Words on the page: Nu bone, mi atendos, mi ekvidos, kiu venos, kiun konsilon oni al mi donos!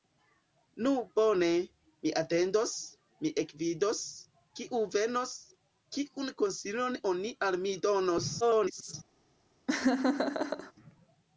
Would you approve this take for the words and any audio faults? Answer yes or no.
no